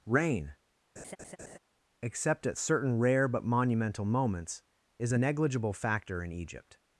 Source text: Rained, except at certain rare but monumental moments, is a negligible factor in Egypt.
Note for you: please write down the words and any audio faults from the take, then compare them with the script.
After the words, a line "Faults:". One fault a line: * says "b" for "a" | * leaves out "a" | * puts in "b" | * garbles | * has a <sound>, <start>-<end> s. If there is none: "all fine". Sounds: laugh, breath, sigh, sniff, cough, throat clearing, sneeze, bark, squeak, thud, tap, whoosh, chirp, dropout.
Rain, except at certain rare but monumental moments, is a negligible factor in Egypt.
Faults:
* says "Rain" for "Rained"
* has a laugh, 1.0-1.6 s